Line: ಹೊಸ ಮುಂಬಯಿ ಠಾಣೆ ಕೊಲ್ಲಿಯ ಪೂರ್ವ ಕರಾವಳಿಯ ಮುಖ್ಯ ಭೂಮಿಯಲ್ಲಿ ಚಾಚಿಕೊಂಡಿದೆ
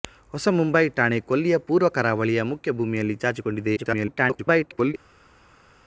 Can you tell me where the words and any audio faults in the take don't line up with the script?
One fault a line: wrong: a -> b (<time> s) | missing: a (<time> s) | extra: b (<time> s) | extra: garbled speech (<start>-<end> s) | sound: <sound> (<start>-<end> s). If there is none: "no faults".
extra: garbled speech (3.8-4.9 s)